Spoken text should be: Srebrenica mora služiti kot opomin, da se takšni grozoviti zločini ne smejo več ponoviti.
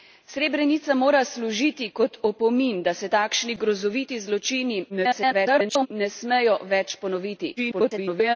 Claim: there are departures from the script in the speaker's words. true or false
true